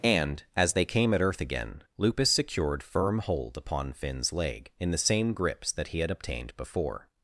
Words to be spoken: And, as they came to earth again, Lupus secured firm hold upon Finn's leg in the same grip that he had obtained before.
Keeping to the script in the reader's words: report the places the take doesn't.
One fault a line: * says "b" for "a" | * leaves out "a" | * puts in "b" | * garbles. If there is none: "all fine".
* says "at" for "to"
* says "grips" for "grip"